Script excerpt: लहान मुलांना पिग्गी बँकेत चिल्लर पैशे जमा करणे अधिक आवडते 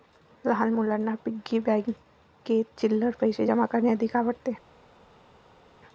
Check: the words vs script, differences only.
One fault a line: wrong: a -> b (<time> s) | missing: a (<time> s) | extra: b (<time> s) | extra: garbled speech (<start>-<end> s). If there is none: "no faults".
no faults